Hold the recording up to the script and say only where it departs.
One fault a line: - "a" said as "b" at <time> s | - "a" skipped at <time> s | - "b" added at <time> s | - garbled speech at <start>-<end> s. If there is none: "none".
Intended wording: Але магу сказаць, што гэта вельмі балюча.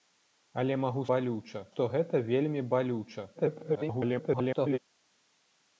- "сказаць" said as "балюча" at 1.1 s
- garbled speech at 3.3-4.8 s